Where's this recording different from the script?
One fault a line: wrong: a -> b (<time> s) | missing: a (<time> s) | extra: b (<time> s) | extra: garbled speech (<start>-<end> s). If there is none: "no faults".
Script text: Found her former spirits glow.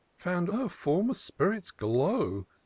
no faults